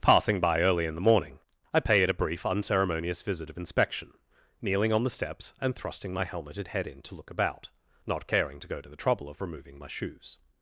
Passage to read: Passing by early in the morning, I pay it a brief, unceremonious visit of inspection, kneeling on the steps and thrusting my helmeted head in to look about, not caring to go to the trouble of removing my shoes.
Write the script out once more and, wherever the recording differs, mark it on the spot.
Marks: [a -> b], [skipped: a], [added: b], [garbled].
Passing by early in the morning, I pay it a brief, unceremonious visit of inspection, kneeling on the steps and thrusting my helmeted head in to look about, not caring to go to the trouble of removing my shoes.